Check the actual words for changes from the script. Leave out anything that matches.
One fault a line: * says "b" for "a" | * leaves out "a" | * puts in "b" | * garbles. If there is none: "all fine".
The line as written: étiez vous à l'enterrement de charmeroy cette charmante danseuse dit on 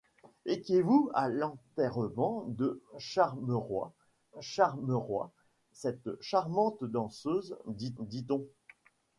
* puts in "charmeroy"
* puts in "dit"